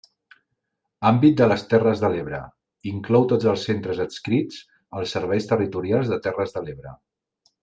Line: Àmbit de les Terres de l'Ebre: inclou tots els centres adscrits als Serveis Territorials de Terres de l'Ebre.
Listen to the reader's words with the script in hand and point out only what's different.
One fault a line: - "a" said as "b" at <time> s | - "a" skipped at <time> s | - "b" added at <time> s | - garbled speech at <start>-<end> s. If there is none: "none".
none